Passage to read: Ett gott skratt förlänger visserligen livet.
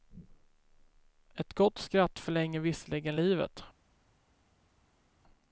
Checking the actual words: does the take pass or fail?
pass